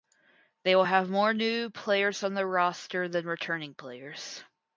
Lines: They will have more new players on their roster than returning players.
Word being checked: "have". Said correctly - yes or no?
yes